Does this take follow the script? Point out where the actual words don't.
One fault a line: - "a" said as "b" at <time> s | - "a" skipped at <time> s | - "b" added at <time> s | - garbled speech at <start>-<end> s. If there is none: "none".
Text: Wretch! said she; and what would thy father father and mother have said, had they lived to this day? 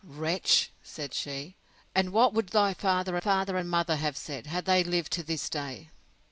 none